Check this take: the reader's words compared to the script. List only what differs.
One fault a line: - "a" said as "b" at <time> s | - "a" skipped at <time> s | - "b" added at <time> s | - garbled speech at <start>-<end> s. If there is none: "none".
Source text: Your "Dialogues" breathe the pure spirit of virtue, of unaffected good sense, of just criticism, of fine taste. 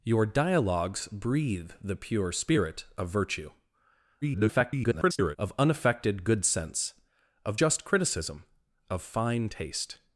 - garbled speech at 4.2-5.4 s